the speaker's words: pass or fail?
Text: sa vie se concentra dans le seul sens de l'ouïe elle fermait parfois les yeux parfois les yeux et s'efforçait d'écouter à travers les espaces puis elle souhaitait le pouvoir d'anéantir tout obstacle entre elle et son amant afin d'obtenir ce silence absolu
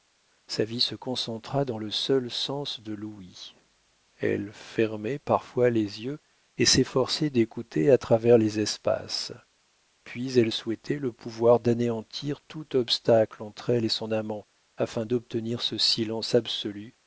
fail